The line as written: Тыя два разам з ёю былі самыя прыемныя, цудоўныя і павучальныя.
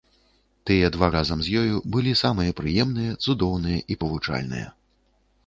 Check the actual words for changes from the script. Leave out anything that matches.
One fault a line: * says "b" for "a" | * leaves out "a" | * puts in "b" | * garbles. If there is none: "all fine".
all fine